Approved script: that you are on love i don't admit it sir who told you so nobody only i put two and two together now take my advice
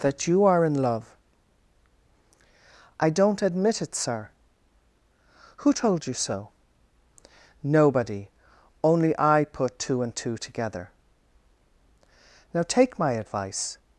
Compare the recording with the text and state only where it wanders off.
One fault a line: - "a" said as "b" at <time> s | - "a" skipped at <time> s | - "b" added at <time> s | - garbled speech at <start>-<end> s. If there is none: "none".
- "on" said as "in" at 0.7 s